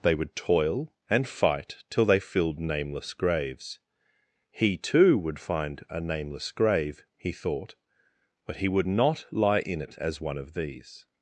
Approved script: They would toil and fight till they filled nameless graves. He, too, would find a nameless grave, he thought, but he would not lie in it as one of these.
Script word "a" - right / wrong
right